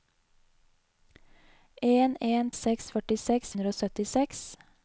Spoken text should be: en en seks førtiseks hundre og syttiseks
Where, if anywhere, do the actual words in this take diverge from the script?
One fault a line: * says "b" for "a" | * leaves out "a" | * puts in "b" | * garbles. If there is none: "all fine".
all fine